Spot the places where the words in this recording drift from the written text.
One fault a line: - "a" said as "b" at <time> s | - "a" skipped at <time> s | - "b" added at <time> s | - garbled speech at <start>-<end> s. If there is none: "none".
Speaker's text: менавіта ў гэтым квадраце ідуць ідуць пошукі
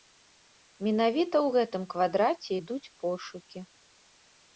- "ідуць" skipped at 2.9 s